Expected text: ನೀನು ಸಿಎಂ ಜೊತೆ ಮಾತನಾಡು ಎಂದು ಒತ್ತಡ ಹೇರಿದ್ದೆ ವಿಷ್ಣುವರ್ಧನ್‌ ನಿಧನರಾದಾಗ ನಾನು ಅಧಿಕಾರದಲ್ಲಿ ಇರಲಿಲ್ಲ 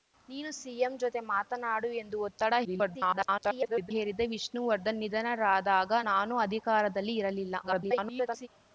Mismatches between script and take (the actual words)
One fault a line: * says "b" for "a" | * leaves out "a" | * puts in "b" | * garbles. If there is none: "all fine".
* garbles
* garbles